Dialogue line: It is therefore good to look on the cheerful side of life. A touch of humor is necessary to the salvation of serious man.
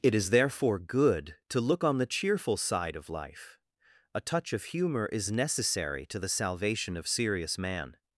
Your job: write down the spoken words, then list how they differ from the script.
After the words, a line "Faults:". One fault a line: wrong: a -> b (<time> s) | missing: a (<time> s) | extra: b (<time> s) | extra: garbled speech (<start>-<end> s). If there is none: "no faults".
It is therefore good to look on the cheerful side of life. A touch of humor is necessary to the salvation of serious man.
Faults:
no faults